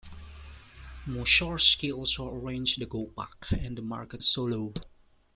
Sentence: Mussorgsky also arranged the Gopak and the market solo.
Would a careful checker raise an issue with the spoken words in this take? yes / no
no